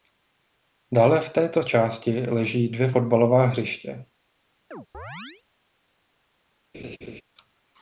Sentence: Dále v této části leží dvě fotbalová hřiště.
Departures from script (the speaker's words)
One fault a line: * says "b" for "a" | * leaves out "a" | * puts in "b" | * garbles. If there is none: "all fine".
all fine